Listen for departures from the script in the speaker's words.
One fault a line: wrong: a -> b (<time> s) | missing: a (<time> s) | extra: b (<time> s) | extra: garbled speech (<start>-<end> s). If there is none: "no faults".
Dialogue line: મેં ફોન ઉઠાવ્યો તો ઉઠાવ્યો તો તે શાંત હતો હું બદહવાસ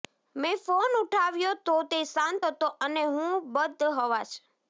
missing: ઉઠાવ્યો તો (1.8 s)
extra: અને (2.8 s)